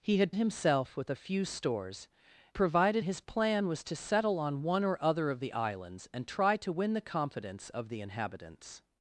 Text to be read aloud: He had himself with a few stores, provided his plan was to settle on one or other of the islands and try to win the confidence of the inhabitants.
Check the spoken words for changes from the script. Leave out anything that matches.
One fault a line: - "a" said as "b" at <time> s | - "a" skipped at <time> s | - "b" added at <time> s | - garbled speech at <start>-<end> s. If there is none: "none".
none